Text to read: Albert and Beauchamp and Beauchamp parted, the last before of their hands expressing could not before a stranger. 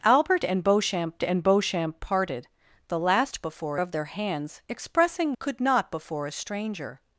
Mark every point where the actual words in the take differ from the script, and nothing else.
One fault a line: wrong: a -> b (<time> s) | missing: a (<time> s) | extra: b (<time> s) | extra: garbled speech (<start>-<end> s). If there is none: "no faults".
no faults